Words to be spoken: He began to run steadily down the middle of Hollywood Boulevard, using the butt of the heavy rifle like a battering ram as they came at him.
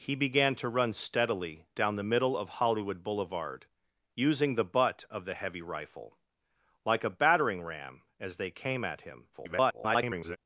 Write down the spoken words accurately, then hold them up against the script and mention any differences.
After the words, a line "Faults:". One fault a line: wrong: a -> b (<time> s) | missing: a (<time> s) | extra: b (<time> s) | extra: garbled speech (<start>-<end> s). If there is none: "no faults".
He began to run steadily down the middle of Hollywood Boulevard, using the butt of the heavy rifle like a battering ram as they came at him. [garbled]
Faults:
extra: garbled speech (9.3-10.4 s)